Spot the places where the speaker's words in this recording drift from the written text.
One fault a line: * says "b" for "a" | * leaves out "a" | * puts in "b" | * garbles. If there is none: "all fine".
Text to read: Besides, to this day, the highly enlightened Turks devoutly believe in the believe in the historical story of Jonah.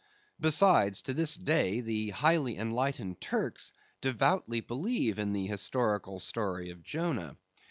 * leaves out "believe in the"